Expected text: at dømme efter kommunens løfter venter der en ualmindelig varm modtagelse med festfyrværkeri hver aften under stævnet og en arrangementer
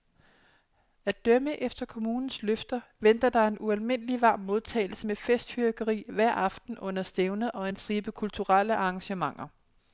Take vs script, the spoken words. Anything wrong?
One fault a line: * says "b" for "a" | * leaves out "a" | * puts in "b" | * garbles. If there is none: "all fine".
* puts in "stribe kulturelle"